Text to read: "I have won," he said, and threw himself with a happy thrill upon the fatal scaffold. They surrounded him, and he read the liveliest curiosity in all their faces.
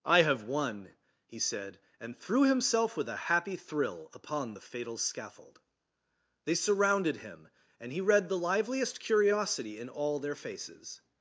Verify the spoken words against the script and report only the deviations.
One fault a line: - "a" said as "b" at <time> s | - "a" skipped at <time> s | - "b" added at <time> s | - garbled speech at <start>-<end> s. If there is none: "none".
none